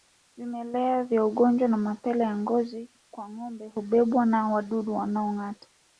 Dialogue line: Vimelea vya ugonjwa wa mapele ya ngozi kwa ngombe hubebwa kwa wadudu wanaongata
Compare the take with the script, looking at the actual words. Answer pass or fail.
fail